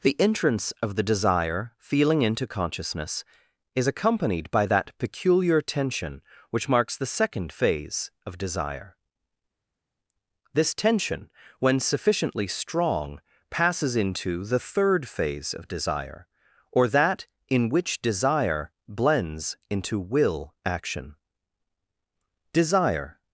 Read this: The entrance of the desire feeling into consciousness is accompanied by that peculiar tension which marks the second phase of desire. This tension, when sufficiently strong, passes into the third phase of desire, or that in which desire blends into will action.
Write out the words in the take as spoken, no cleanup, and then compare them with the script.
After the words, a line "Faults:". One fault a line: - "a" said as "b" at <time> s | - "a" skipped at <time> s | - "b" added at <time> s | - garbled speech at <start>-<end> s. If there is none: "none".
The entrance of the desire feeling into consciousness is accompanied by that peculiar tension which marks the second phase of desire. This tension, when sufficiently strong, passes into the third phase of desire, or that in which desire blends into will action. Desire
Faults:
- "Desire" added at 22.5 s